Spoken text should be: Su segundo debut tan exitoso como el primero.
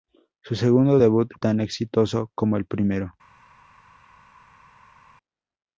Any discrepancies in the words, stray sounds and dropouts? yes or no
no